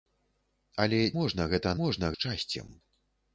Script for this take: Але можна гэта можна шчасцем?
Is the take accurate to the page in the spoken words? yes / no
yes